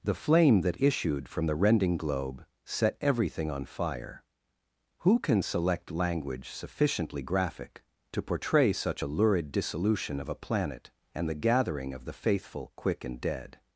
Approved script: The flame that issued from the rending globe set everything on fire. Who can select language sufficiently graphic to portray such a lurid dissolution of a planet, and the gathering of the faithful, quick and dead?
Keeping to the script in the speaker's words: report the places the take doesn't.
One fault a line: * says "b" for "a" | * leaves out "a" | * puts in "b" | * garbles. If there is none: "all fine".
all fine